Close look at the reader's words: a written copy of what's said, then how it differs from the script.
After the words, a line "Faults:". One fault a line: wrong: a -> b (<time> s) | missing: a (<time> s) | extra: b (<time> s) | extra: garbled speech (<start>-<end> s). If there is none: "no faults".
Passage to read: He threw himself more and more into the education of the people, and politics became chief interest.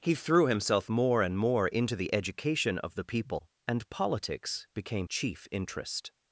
He threw himself more and more into the education of the people, and politics became chief interest.
Faults:
no faults